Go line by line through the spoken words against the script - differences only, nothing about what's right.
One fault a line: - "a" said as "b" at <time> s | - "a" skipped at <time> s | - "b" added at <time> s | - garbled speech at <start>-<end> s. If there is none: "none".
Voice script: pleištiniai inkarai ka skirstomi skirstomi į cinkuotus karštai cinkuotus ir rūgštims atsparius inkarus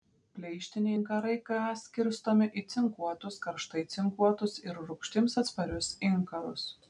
- "skirstomi" skipped at 2.5 s